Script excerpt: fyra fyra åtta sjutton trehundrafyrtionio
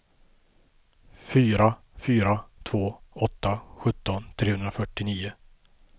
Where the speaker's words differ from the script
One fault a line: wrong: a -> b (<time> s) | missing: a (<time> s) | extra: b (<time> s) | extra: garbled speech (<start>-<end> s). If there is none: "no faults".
extra: två (2.6 s)